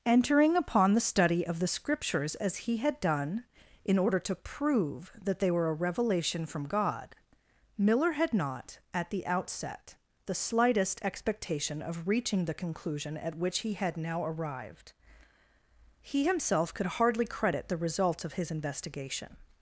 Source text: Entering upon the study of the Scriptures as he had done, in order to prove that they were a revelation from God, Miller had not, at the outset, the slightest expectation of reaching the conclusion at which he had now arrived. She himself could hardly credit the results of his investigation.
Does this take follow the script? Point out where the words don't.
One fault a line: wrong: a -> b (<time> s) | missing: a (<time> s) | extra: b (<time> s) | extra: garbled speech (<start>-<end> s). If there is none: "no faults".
wrong: She -> He (16.0 s)